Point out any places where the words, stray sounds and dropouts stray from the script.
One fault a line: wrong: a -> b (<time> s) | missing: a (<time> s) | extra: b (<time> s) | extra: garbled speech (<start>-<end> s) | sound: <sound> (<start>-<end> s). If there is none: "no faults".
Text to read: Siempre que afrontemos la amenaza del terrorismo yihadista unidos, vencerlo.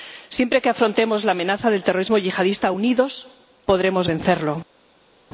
extra: podremos (3.7 s)